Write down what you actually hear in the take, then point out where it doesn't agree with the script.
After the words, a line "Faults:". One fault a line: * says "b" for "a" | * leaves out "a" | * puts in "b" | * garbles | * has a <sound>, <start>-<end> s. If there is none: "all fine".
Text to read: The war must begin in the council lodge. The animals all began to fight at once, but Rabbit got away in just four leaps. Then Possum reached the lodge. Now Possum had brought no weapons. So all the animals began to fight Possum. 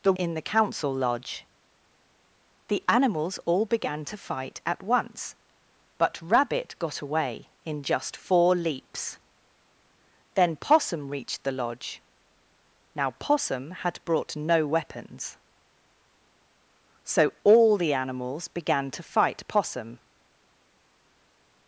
The in the council lodge. The animals all began to fight at once, but Rabbit got away in just four leaps. Then Possum reached the lodge. Now Possum had brought no weapons. So all the animals began to fight Possum.
Faults:
* leaves out "war must begin"